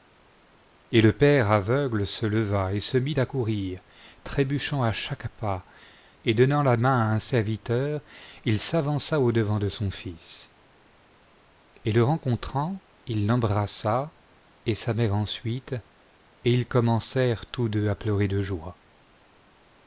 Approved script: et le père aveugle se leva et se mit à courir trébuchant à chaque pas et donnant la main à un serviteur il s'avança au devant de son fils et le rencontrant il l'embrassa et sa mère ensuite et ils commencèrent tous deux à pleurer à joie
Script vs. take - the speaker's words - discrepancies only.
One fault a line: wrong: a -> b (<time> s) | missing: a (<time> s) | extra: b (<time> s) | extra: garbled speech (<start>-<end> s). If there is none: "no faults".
wrong: à -> de (18.3 s)